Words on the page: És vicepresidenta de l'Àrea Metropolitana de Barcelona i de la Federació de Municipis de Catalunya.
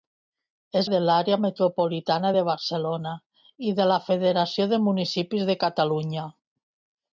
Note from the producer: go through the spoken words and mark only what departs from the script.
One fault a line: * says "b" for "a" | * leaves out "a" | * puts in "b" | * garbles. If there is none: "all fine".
* leaves out "vicepresidenta"